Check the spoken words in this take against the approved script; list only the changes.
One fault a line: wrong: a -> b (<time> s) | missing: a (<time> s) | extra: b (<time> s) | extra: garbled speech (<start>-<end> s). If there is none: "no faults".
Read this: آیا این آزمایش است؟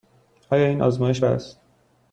no faults